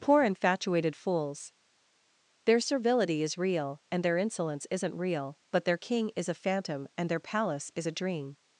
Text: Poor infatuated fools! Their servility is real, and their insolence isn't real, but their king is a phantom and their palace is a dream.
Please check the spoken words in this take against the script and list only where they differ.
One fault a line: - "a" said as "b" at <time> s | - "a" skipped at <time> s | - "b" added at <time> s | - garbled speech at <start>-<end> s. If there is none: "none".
none